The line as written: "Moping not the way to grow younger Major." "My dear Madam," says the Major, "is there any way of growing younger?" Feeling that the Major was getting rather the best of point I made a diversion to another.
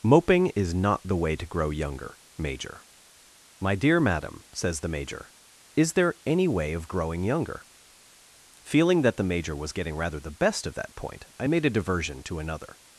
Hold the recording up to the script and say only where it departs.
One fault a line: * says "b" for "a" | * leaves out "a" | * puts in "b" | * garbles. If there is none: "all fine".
* puts in "is"
* puts in "that"